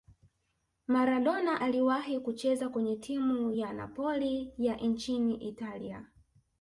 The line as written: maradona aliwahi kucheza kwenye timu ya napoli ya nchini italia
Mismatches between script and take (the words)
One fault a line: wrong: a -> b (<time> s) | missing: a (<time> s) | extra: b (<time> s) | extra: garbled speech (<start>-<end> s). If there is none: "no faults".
no faults